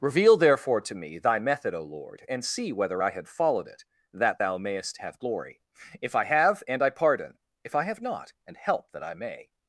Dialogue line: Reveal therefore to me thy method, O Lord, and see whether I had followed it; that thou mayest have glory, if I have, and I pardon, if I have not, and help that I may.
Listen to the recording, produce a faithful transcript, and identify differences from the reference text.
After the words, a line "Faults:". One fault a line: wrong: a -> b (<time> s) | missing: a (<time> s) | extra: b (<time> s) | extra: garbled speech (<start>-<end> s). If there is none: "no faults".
Reveal therefore to me thy method, O Lord, and see whether I had followed it; that thou mayest have glory, if I have, and I pardon, if I have not, and help that I may.
Faults:
no faults